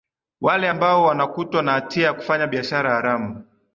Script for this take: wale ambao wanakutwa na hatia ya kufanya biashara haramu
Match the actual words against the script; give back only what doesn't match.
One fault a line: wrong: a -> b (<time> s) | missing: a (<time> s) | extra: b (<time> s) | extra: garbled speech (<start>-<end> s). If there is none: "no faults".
no faults